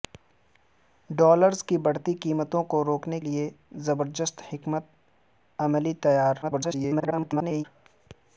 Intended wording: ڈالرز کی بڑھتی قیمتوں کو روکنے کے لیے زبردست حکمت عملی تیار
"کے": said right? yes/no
no